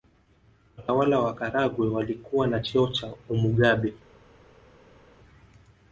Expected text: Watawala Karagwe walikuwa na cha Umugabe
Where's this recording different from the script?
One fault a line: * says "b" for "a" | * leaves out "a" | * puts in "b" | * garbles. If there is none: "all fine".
* puts in "wa"
* puts in "cheo"